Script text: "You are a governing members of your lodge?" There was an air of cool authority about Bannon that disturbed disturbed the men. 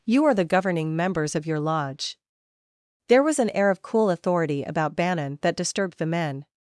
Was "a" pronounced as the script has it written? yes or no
no